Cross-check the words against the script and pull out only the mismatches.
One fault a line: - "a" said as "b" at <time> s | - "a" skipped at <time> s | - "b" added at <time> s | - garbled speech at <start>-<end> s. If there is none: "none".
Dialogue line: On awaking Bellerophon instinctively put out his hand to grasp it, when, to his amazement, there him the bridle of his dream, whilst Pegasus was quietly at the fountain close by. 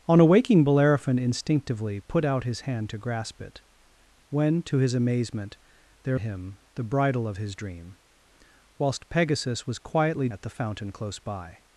none